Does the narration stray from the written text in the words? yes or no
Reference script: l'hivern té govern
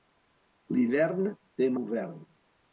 no